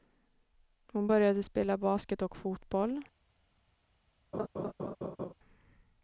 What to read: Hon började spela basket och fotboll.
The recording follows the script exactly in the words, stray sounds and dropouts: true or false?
false